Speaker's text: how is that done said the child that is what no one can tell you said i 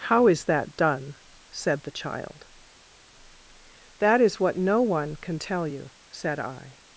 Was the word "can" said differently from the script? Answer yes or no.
no